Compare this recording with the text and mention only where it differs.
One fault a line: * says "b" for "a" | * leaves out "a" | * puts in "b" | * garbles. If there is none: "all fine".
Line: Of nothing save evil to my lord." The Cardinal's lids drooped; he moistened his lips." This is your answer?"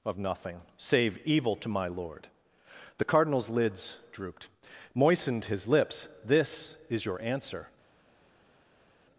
* leaves out "he"